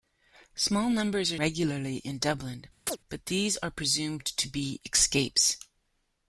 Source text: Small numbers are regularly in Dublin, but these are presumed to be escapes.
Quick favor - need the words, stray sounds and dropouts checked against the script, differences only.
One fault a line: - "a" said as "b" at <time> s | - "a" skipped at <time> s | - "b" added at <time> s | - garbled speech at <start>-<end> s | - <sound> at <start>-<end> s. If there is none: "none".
- chirp at 2.9-3.0 s